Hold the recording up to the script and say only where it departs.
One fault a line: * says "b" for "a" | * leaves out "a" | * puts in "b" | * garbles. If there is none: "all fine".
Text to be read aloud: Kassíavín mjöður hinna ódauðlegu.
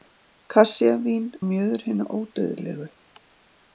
all fine